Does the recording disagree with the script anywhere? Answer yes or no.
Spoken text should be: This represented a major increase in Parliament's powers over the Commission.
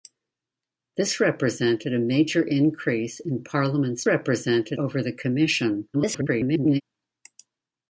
yes